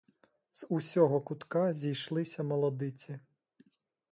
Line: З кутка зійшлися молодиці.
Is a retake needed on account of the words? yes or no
yes